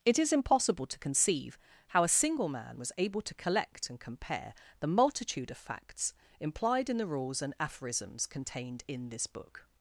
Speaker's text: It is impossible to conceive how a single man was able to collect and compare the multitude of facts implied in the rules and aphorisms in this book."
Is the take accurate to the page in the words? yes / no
no